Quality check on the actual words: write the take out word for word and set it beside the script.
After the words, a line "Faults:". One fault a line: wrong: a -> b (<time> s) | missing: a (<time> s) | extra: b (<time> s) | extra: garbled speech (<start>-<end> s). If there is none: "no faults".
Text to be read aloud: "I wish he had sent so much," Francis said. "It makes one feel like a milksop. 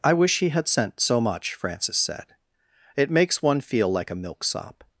"I wish he had sent so much," Francis said. "It makes one feel like a milksop.
Faults:
no faults